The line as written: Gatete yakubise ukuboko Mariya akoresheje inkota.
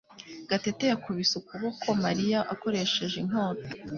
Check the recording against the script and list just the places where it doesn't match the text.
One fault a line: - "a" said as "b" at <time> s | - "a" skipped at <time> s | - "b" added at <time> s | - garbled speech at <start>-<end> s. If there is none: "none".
none